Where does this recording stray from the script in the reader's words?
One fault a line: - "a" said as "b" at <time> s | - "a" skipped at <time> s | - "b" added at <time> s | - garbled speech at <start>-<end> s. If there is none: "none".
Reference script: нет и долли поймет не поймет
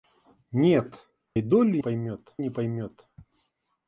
none